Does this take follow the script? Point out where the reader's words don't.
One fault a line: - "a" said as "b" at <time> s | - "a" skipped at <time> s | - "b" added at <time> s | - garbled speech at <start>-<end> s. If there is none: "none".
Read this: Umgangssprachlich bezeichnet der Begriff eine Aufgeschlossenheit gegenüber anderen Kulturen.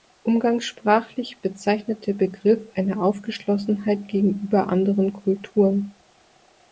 none